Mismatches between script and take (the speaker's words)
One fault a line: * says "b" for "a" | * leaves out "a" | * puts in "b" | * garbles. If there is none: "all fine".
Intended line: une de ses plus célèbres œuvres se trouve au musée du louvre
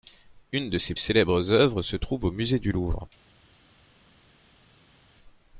* leaves out "plus"